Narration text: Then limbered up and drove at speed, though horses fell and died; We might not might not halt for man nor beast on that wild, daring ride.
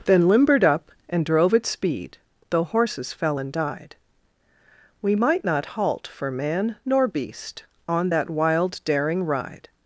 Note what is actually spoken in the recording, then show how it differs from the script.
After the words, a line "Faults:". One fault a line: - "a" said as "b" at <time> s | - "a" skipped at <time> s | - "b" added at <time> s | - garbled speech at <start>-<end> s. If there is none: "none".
Then limbered up and drove at speed, though horses fell and died; We might not halt for man nor beast on that wild, daring ride.
Faults:
- "might not" skipped at 5.6 s